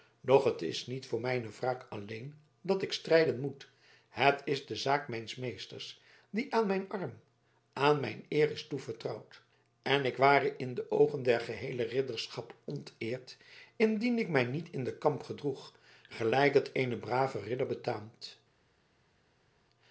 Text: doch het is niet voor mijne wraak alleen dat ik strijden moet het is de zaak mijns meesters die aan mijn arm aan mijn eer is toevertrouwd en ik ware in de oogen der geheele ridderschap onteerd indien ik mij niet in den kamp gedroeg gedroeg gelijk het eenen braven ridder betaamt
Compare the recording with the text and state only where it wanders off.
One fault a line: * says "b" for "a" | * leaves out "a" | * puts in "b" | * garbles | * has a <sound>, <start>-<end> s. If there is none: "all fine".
* leaves out "gedroeg"